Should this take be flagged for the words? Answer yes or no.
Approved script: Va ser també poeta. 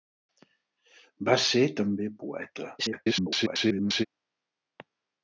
yes